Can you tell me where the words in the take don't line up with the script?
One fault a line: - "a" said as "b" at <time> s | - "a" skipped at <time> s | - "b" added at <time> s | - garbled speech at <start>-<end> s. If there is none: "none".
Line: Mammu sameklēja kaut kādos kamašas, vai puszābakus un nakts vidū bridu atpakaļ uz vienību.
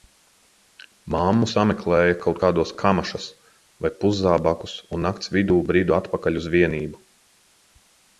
none